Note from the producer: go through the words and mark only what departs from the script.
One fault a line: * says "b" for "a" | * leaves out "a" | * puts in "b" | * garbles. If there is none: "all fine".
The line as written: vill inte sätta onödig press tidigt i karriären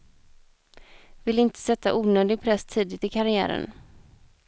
all fine